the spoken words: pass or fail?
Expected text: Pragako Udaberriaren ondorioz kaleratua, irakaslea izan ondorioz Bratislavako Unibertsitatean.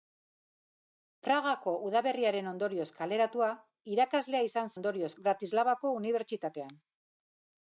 pass